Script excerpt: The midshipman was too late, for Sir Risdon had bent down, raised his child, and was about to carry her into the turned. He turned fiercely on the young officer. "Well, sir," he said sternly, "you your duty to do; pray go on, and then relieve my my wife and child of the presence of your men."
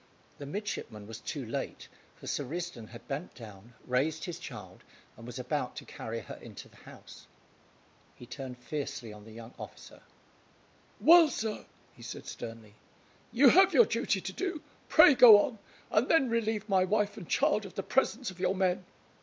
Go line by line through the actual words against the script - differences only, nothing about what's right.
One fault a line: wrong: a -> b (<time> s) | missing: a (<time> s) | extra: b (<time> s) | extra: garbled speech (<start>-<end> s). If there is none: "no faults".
wrong: turned -> house (6.8 s)
extra: have (13.5 s)
missing: my (16.8 s)